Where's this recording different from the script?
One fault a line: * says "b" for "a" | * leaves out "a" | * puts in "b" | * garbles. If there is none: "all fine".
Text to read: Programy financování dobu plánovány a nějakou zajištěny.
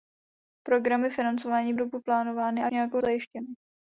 all fine